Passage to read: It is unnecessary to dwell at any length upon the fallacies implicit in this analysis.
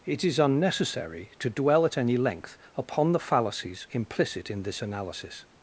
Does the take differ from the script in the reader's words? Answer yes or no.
no